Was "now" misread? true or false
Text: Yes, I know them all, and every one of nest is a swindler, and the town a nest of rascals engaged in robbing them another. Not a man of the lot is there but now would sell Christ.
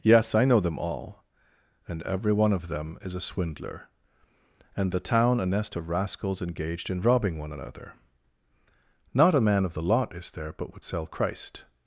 true